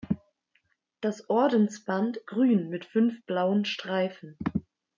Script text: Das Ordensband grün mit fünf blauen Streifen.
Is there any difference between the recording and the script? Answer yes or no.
no